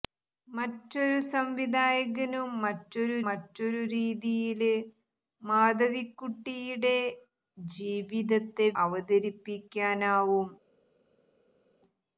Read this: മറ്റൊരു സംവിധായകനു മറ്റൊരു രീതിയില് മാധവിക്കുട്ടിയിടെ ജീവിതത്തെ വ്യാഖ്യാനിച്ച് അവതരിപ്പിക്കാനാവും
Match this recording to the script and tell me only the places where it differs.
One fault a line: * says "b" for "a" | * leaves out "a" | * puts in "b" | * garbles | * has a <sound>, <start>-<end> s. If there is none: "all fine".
* puts in "മറ്റൊരു"
* leaves out "വ്യാഖ്യാനിച്ച്"